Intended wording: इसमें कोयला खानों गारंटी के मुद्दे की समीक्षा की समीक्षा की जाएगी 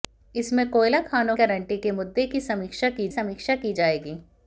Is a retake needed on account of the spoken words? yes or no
no